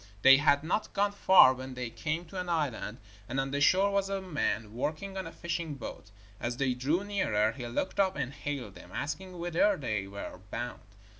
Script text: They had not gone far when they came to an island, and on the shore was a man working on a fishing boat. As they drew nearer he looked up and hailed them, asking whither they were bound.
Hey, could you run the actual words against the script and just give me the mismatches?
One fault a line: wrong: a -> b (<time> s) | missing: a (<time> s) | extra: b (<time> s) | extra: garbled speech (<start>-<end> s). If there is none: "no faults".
no faults